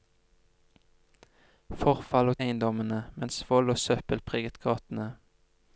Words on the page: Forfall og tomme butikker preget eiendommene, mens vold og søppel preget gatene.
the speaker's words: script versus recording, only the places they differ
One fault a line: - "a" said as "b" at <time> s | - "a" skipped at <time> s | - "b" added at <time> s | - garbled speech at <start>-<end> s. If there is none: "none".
- "tomme butikker preget" skipped at 2.4 s